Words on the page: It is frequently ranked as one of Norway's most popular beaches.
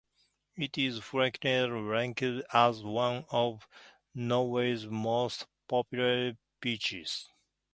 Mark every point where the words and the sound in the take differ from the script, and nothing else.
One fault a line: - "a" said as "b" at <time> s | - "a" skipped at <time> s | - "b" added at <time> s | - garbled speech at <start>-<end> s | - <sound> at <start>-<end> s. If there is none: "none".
none